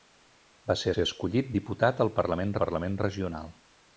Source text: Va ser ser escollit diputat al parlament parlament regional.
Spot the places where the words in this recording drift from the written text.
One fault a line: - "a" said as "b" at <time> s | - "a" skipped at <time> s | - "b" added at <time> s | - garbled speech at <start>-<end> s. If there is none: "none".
none